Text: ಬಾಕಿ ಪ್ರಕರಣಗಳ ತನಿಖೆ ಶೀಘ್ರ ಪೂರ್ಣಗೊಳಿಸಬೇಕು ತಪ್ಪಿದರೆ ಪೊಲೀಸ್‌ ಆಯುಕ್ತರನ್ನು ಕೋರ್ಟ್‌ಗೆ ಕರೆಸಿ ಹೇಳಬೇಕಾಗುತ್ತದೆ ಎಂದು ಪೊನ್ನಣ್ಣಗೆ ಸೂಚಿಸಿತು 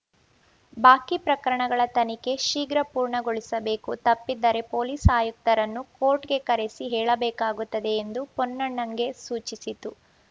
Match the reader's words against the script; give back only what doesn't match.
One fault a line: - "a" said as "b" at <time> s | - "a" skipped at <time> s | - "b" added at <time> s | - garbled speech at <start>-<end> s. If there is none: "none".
none